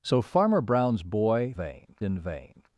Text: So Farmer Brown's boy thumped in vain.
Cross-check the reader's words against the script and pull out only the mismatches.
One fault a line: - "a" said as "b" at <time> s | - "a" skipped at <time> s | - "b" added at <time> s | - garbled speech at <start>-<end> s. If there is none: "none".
- "thumped" said as "vain" at 1.5 s